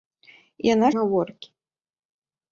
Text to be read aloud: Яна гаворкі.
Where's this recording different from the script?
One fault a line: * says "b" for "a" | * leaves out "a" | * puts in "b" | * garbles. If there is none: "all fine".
all fine